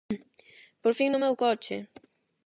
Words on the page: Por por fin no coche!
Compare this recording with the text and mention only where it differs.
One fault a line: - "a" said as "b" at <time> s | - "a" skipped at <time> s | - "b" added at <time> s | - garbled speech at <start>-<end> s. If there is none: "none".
- "por" skipped at 0.9 s
- "meu" added at 1.2 s